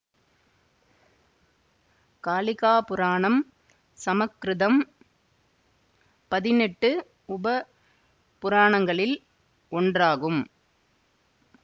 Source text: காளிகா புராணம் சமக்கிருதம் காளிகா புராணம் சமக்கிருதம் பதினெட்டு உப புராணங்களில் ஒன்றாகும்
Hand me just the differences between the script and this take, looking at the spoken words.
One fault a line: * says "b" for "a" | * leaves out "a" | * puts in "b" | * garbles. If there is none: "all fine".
* leaves out "காளிகா புராணம் சமக்கிருதம்"